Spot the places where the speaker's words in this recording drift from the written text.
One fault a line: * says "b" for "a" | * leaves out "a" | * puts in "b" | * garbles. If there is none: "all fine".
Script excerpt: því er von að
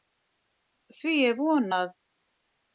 all fine